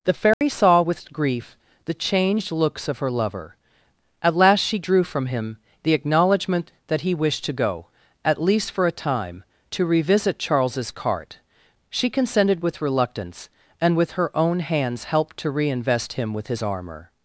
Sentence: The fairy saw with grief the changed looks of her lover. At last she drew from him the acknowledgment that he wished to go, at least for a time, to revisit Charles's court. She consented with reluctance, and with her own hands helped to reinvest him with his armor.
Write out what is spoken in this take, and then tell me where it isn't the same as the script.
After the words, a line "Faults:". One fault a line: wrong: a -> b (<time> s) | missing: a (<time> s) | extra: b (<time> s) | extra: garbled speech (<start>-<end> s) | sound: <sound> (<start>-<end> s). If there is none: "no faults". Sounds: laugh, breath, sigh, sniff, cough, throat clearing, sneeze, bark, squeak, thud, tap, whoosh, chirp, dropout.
The fairy saw with grief the changed looks of her lover. At last she drew from him the acknowledgment that he wished to go, at least for a time, to revisit Charles's cart. She consented with reluctance, and with her own hands helped to reinvest him with his armor.
Faults:
sound: dropout (0.3-0.4 s)
wrong: court -> cart (10.9 s)